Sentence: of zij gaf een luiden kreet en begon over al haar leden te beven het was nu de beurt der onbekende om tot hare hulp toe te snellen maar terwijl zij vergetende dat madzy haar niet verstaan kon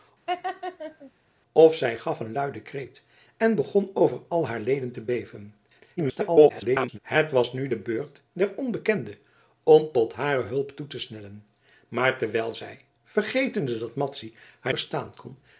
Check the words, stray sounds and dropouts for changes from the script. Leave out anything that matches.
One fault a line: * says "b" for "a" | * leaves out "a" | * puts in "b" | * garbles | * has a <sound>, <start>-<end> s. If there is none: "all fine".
* has a laugh, 0.3-1.1 s
* garbles
* leaves out "niet"